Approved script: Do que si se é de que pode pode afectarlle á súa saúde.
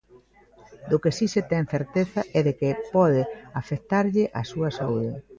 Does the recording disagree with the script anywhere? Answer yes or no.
yes